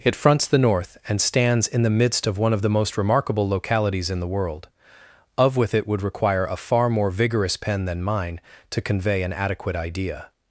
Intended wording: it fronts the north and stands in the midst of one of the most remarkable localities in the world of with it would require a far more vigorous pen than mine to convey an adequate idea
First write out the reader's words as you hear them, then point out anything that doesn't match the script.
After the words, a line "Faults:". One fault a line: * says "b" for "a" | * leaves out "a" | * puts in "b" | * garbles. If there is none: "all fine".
it fronts the north and stands in the midst of one of the most remarkable localities in the world of with it would require a far more vigorous pen than mine to convey an adequate idea
Faults:
all fine